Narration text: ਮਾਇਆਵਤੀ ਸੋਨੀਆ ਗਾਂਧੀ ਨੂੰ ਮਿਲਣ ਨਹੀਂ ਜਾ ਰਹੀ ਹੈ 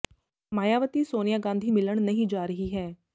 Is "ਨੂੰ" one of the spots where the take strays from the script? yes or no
yes